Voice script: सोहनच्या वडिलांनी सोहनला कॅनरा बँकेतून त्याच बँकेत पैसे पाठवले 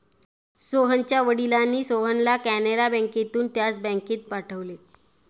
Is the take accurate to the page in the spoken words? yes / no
no